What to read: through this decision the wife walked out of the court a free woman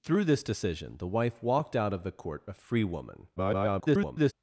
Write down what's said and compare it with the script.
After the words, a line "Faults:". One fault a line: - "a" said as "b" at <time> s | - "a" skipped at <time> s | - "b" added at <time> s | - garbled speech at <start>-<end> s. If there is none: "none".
through this decision the wife walked out of the court a free woman [garbled]
Faults:
- garbled speech at 3.4-4.3 s